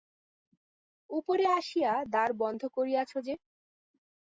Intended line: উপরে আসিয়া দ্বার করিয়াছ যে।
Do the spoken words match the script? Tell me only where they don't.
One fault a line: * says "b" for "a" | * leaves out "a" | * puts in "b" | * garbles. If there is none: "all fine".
* puts in "বন্ধ"